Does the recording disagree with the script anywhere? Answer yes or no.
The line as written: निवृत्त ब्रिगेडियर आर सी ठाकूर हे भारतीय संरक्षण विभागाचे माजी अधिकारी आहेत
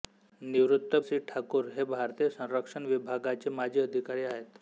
yes